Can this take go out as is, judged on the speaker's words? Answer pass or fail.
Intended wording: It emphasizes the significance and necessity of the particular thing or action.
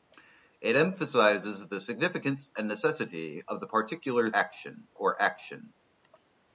fail